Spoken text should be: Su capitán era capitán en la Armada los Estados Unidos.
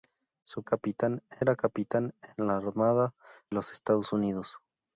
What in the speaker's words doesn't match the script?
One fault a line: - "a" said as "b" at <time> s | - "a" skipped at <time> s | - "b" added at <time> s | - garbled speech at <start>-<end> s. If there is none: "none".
none